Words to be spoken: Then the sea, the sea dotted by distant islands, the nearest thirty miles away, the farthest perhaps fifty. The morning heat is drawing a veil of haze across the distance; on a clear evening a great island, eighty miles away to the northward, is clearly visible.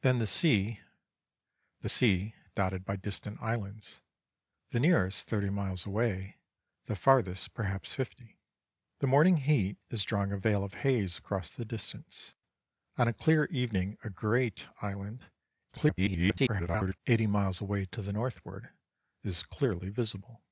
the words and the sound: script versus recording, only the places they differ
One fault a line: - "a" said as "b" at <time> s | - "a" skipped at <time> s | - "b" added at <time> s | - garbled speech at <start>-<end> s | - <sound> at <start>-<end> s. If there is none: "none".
- garbled speech at 15.7-17.0 s